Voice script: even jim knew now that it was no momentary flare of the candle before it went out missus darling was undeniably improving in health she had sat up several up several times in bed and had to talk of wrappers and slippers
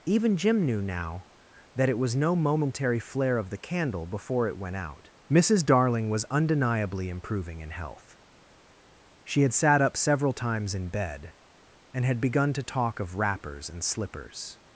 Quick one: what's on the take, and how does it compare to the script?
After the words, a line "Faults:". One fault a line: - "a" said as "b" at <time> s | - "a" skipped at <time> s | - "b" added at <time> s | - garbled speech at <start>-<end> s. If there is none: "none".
even jim knew now that it was no momentary flare of the candle before it went out missus darling was undeniably improving in health she had sat up several times in bed and had begun to talk of wrappers and slippers
Faults:
- "up several" skipped at 10.3 s
- "begun" added at 12.2 s